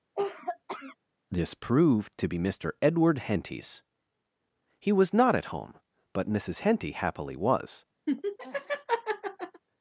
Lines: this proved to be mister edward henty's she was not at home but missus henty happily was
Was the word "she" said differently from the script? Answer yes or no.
yes